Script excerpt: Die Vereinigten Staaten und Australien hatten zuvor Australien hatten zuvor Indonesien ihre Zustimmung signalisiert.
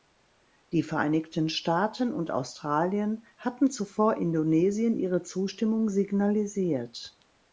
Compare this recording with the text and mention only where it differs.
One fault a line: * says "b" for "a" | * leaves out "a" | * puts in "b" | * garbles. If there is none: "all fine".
* leaves out "Australien hatten zuvor"